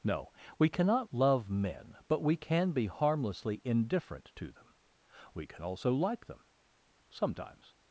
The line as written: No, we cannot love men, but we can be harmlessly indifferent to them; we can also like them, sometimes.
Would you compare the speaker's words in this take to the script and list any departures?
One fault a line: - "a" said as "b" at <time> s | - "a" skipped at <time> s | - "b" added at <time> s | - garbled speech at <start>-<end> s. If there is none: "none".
none